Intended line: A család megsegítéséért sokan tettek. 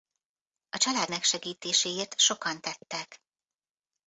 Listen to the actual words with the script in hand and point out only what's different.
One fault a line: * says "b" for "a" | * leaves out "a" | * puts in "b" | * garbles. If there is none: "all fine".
all fine